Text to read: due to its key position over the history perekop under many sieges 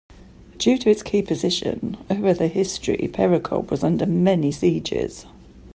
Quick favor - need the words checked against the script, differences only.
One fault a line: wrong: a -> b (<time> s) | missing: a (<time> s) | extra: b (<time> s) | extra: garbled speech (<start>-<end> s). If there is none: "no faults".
extra: was (3.7 s)